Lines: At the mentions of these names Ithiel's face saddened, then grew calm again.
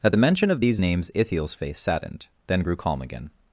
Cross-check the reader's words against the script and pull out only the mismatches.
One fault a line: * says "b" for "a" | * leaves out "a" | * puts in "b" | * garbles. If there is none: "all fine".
* says "mention" for "mentions"